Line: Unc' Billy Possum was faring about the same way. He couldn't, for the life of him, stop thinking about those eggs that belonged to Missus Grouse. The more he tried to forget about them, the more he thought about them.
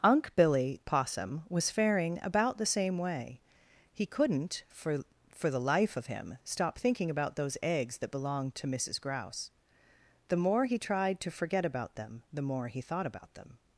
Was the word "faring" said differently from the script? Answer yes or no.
no